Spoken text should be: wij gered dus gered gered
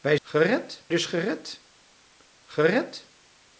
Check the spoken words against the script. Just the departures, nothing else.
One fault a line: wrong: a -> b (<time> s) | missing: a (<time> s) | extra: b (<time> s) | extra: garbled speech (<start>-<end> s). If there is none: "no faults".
no faults